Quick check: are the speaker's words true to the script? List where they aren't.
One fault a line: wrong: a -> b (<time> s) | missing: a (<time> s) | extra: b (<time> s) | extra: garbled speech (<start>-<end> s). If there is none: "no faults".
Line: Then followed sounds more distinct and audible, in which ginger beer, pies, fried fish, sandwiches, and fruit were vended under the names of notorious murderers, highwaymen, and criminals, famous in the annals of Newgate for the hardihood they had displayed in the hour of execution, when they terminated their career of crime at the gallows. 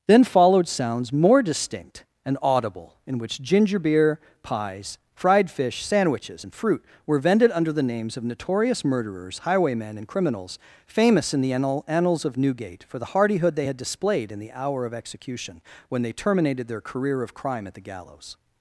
no faults